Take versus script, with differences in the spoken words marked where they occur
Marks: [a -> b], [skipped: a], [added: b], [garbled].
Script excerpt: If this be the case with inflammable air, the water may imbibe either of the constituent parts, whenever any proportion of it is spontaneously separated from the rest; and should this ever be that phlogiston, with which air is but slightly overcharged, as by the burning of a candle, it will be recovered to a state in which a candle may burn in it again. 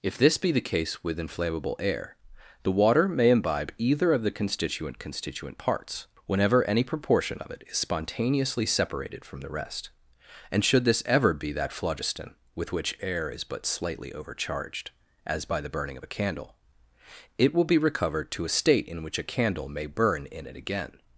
If this be the case with inflammable air, the water may imbibe either of the constituent [added: constituent] parts, whenever any proportion of it is spontaneously separated from the rest; and should this ever be that phlogiston, with which air is but slightly overcharged, as by the burning of a candle, it will be recovered to a state in which a candle may burn in it again.